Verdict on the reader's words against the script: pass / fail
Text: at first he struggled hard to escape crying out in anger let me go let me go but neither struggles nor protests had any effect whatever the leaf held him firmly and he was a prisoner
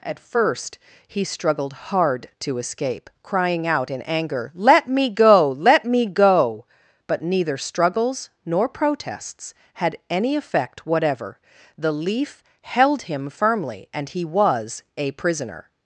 pass